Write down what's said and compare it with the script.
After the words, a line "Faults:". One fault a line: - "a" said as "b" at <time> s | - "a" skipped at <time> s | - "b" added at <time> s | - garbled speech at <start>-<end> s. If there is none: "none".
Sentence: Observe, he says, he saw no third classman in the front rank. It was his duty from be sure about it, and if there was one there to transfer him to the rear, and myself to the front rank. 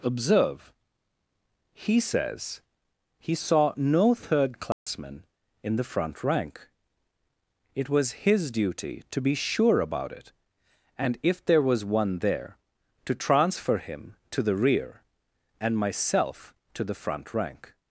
Observe, he says, he saw no third classman in the front rank. It was his duty to be sure about it, and if there was one there to transfer him to the rear, and myself to the front rank.
Faults:
- "from" said as "to" at 9.1 s